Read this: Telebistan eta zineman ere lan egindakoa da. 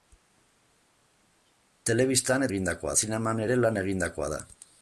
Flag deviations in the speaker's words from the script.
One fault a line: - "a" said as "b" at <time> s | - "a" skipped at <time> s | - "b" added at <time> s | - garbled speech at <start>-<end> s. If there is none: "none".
- "eta" said as "egindakoa" at 2.5 s